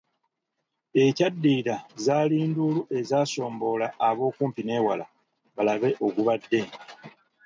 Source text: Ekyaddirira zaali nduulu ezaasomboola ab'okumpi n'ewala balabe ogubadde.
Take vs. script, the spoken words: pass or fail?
pass